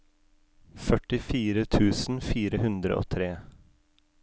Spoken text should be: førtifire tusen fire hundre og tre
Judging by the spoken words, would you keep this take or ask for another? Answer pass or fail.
pass